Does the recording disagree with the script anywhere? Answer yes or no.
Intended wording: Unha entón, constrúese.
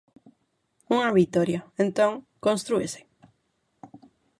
yes